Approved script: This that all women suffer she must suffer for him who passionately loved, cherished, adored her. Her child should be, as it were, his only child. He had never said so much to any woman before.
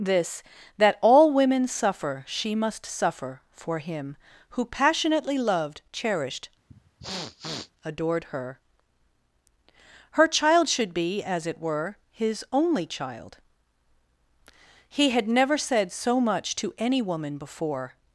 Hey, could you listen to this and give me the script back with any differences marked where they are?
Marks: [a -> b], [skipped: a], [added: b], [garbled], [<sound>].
This that all women suffer she must suffer for him who passionately loved, cherished, [sniff] adored her. Her child should be, as it were, his only child. He had never said so much to any woman before.